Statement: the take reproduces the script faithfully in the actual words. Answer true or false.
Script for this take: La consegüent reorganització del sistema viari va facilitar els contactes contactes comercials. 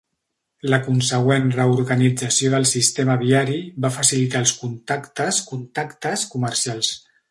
true